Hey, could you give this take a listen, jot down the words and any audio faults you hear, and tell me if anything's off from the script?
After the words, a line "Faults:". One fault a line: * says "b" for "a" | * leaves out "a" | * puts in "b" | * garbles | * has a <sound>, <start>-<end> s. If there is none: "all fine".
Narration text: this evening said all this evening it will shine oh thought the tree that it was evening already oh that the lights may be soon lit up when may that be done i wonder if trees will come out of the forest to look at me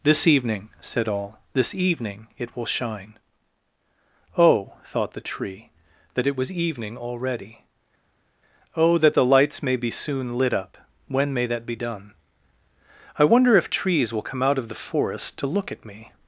this evening said all this evening it will shine oh thought the tree that it was evening already oh that the lights may be soon lit up when may that be done i wonder if trees will come out of the forest to look at me
Faults:
all fine